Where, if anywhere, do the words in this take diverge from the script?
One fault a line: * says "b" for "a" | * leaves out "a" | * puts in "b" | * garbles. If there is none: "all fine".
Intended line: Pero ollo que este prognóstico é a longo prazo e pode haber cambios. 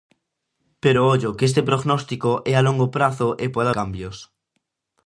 * leaves out "haber"